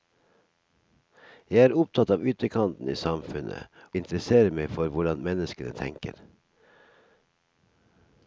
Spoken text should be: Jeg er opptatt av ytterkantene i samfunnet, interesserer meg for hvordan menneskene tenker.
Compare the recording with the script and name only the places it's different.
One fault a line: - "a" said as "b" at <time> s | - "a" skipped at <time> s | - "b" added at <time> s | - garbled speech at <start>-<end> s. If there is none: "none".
none